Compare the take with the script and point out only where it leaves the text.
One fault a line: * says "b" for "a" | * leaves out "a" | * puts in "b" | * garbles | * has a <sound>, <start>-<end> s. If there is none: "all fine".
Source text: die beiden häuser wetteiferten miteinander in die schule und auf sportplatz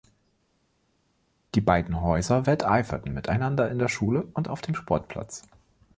* says "der" for "die"
* puts in "dem"